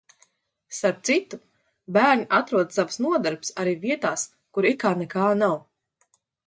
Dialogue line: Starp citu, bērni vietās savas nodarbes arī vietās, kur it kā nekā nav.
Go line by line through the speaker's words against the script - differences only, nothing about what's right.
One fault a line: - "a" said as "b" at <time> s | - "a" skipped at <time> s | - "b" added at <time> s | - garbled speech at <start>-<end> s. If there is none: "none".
- "vietās" said as "atrod" at 2.4 s